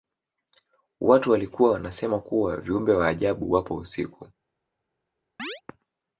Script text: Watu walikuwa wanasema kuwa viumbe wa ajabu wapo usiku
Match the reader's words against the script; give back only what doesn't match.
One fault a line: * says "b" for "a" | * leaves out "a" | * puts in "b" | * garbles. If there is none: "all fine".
all fine